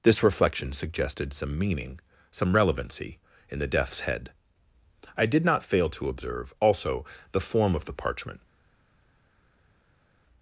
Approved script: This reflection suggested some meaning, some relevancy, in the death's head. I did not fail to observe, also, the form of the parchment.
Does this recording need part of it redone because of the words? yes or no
no